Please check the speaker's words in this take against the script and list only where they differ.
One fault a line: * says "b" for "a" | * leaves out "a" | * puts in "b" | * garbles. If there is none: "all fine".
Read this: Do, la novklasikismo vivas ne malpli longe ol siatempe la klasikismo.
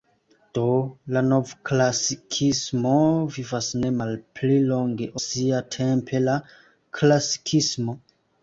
* leaves out "ol"